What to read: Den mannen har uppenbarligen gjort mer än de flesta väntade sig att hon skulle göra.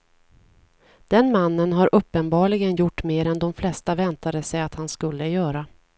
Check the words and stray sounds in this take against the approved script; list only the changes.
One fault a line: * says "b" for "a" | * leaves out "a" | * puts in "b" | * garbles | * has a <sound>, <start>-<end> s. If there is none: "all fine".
* says "han" for "hon"